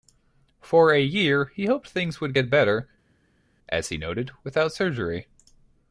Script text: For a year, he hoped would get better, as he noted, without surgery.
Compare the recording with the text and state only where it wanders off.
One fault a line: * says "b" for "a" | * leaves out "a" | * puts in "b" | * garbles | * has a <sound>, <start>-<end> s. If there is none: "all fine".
* puts in "things"